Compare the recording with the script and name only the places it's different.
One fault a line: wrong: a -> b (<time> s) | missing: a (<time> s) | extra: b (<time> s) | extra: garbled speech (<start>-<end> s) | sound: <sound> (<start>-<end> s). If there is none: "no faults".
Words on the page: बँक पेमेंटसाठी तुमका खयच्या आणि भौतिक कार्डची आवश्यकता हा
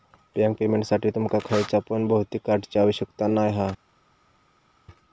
wrong: आणि -> पण (1.9 s)
extra: नाय (3.3 s)